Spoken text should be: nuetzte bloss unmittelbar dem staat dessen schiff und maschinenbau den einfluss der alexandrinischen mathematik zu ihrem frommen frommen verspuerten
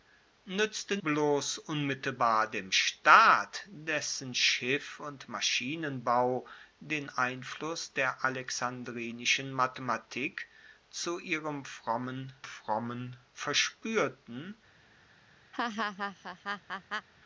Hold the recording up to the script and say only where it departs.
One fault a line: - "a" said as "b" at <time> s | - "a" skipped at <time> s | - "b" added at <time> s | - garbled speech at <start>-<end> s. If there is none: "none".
none